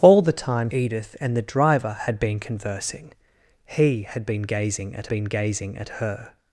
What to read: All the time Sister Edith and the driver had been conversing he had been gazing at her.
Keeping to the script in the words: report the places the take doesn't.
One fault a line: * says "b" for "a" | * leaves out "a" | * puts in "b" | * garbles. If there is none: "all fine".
* leaves out "Sister"
* puts in "been gazing at"